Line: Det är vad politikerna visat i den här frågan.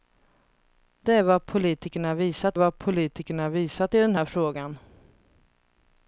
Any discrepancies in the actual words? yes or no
yes